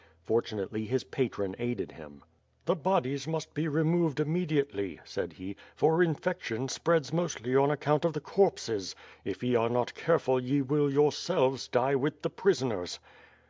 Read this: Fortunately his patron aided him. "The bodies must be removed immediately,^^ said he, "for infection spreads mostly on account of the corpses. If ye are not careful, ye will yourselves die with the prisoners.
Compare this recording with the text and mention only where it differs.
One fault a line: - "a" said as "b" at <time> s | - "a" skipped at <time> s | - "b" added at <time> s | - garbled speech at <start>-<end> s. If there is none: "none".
none